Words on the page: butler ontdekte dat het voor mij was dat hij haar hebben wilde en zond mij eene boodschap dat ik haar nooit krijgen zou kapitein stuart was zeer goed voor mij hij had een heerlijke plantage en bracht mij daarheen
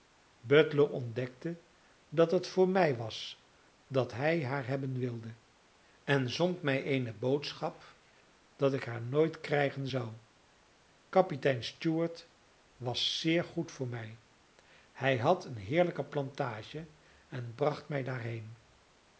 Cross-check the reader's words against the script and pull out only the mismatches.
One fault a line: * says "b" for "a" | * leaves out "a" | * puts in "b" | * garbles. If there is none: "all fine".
all fine